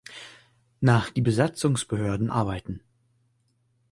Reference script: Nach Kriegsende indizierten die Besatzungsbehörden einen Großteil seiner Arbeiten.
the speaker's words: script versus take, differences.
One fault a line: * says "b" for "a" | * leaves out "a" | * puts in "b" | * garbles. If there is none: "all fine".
* leaves out "Kriegsende indizierten"
* leaves out "einen Großteil seiner"